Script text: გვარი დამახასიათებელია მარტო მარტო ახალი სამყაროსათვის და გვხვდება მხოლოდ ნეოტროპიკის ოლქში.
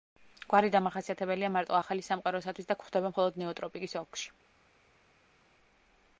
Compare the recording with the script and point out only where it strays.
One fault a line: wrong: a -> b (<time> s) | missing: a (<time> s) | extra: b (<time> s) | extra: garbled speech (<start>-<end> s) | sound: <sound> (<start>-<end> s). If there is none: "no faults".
missing: მარტო (1.8 s)